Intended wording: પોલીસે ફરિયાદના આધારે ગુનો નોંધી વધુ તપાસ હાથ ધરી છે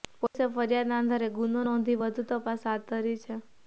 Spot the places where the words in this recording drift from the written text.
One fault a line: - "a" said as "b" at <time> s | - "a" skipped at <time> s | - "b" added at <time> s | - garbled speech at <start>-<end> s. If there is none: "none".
none